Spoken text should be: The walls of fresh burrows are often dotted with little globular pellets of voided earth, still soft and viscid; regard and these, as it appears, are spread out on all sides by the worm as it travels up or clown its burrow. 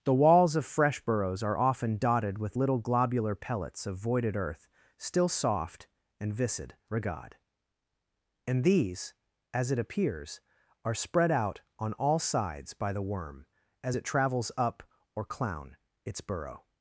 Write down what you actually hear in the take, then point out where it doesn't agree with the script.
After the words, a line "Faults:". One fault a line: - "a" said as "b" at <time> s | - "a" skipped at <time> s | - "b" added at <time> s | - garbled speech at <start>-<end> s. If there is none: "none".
The walls of fresh burrows are often dotted with little globular pellets of voided earth, still soft and viscid; regard and these, as it appears, are spread out on all sides by the worm as it travels up or clown its burrow.
Faults:
none